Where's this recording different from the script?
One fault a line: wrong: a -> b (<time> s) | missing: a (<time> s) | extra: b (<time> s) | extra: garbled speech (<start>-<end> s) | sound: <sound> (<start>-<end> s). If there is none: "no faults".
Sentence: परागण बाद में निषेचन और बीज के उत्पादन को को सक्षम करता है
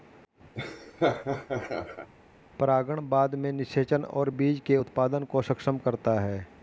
sound: laugh (0.5-2.1 s)
missing: को (5.4 s)